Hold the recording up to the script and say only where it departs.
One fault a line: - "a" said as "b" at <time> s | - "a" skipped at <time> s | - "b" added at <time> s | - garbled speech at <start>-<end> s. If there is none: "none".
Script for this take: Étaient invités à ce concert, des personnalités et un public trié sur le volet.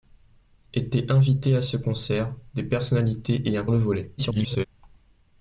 - "public trié sur" skipped at 3.6 s
- garbled speech at 4.2-4.7 s